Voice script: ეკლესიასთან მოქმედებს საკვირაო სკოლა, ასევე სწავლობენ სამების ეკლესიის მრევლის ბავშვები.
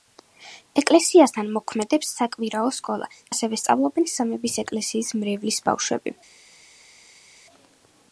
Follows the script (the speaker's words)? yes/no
yes